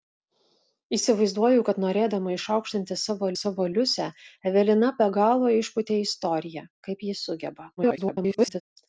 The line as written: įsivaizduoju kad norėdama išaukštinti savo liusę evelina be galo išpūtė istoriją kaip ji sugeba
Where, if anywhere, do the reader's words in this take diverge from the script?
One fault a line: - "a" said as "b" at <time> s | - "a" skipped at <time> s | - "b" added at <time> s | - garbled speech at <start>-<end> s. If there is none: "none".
- "savo" added at 3.4 s
- garbled speech at 7.8-8.6 s